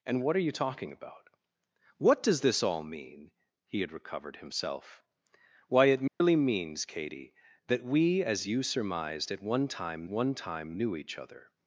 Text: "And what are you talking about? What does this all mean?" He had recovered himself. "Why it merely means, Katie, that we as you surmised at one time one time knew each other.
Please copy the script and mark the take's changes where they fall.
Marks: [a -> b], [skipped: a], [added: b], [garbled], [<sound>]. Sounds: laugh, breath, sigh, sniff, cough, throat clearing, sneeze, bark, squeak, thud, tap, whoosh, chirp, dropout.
"And what are you talking about? What does this all mean?" He had recovered himself. "Why it merely [dropout] means, Katie, that we as you surmised at one time one time knew each other.